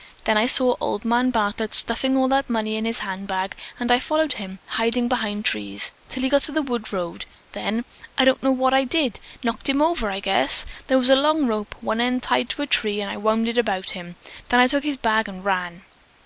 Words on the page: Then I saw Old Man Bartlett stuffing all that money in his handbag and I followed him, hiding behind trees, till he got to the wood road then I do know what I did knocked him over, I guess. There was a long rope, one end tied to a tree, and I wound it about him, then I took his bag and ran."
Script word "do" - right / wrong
wrong